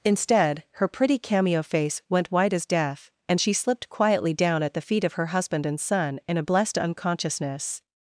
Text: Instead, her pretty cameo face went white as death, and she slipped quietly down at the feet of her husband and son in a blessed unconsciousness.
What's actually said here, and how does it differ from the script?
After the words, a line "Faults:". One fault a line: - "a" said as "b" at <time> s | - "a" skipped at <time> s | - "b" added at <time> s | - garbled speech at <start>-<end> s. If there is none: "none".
Instead, her pretty cameo face went white as death, and she slipped quietly down at the feet of her husband and son in a blessed unconsciousness.
Faults:
none